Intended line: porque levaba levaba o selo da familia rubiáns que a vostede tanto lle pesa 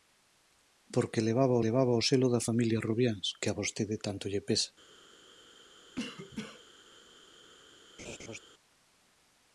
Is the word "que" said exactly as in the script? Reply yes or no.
yes